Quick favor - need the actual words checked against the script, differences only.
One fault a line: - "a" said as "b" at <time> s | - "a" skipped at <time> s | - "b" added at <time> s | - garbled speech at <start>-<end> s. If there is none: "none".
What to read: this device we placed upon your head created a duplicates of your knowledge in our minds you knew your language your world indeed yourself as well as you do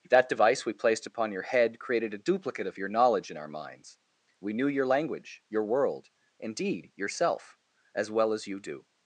- "this" said as "that" at 0.1 s
- "duplicates" said as "duplicate" at 2.2 s
- "you" said as "we" at 4.4 s